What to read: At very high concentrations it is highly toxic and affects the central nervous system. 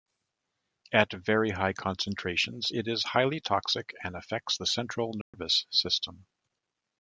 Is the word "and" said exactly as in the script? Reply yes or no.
yes